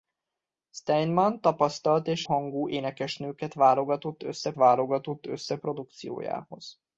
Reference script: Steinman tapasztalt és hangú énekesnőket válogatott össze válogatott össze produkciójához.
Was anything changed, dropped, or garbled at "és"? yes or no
no